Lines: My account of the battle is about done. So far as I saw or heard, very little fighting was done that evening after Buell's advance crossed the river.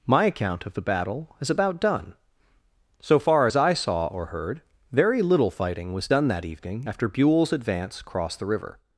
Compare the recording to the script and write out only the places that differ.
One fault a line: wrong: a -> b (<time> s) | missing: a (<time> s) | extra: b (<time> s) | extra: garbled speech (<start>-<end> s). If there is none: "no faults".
no faults